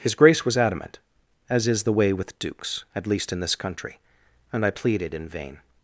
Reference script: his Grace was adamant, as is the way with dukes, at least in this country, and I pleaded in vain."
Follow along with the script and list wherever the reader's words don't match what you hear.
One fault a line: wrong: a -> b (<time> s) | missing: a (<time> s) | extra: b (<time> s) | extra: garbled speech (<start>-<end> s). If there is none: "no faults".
no faults